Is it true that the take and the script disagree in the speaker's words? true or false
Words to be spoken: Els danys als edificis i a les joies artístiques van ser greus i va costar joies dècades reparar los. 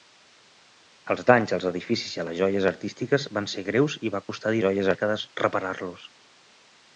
false